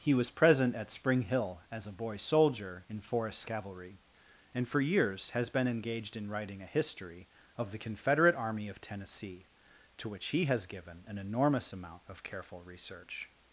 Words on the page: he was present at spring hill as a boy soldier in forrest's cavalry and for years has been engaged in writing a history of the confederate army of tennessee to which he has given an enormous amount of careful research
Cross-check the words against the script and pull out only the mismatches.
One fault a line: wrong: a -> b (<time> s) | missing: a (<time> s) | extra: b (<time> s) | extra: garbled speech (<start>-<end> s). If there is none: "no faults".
no faults